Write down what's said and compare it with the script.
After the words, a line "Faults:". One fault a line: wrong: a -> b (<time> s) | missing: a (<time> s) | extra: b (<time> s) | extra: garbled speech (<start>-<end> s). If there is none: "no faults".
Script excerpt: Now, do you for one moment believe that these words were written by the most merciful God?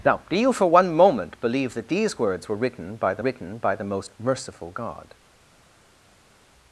Now, do you for one moment believe that these words were written by the written by the most merciful God?
Faults:
extra: written by the (3.2 s)